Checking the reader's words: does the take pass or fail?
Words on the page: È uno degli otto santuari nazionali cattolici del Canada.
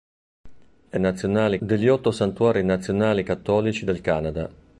fail